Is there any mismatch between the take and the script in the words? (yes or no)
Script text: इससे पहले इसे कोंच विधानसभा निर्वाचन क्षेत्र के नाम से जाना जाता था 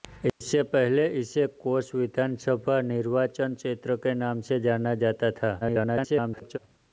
yes